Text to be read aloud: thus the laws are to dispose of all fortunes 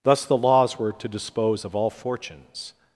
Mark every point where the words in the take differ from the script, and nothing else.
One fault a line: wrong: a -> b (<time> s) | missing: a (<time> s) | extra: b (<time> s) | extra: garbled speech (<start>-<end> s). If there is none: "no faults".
wrong: are -> were (0.8 s)